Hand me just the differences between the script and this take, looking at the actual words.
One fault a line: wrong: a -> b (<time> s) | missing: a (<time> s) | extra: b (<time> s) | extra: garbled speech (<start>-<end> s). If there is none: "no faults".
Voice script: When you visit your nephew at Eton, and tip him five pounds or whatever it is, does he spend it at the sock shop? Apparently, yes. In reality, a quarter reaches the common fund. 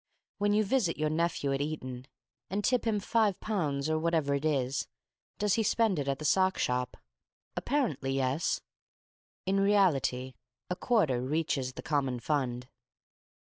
no faults